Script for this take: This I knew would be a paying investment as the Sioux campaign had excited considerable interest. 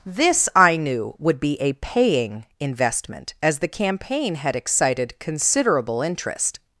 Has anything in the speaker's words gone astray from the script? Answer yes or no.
yes